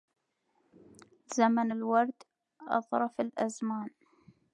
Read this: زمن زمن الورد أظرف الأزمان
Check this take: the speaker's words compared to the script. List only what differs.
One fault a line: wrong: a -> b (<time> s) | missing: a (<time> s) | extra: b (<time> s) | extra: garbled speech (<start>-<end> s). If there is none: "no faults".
missing: زمن (1.7 s)